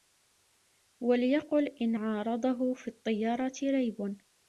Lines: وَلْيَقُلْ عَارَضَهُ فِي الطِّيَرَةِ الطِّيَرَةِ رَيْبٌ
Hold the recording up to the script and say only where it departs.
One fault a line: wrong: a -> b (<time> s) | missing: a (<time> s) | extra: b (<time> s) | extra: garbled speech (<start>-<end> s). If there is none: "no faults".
extra: إنْ (1.8 s)
missing: الطِّيَرَةِ (3.5 s)